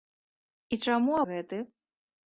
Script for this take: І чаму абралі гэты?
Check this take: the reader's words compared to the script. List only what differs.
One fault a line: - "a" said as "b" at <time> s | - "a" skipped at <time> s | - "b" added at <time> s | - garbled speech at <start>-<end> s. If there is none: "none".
- "абралі" skipped at 1.1 s